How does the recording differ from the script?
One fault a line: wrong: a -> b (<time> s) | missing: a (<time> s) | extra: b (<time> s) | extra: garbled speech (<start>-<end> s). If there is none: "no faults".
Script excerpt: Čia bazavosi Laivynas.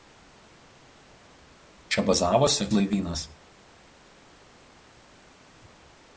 no faults